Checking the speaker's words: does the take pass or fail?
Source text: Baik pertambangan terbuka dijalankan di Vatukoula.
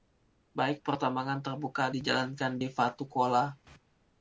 pass